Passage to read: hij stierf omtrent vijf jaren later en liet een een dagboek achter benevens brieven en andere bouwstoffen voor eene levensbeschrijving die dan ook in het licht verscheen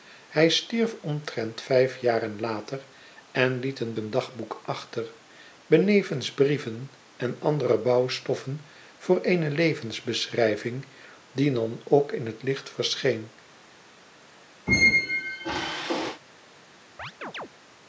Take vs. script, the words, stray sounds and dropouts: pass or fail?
fail